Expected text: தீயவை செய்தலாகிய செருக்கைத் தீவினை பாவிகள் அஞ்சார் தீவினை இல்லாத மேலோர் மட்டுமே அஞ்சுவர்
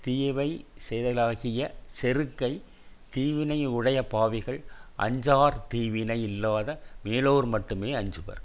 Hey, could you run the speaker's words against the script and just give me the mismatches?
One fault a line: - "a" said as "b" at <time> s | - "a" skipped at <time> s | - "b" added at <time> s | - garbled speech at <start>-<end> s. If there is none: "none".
- "உடைய" added at 3.6 s